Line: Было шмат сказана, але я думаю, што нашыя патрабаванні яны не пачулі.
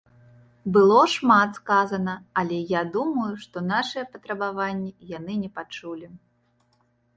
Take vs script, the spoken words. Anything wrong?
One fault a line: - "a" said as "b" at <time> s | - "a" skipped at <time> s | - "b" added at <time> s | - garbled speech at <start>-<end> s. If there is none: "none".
none